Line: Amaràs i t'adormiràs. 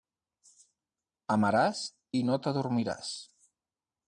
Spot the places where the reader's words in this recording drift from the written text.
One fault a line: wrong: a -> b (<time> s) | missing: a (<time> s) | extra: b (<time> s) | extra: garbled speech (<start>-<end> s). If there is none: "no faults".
extra: no (2.3 s)